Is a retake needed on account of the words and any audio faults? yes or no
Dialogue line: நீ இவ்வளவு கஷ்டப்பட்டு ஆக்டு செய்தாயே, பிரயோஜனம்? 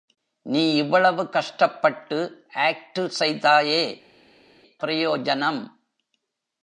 no